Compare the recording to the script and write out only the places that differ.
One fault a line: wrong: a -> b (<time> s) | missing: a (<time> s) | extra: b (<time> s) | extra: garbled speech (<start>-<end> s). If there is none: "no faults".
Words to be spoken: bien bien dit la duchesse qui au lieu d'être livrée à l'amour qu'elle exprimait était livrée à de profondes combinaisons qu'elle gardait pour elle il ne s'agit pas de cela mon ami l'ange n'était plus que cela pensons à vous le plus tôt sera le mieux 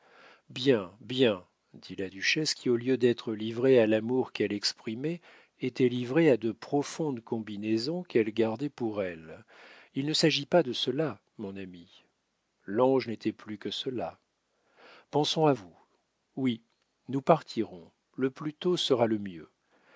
extra: oui nous partirons (16.3 s)